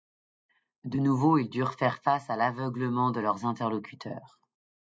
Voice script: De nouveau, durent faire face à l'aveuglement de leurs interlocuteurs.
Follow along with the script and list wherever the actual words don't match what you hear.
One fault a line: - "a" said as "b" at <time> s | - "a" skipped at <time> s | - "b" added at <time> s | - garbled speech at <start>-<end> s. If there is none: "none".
- "ils" added at 1.4 s